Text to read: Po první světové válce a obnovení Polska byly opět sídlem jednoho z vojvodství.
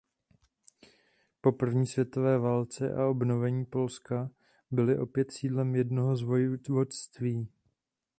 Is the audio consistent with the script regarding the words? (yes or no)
yes